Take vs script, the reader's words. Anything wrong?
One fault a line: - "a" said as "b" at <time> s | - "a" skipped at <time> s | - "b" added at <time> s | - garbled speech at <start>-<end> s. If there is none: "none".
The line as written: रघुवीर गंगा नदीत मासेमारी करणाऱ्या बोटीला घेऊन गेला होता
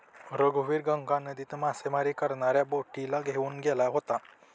none